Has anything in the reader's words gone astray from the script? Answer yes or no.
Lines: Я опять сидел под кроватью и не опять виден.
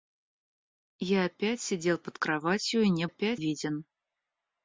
no